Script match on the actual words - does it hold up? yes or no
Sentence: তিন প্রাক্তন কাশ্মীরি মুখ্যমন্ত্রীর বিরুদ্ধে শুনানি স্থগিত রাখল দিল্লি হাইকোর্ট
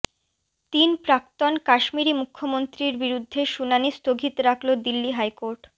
yes